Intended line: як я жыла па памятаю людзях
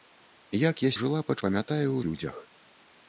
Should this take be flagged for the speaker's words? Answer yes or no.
no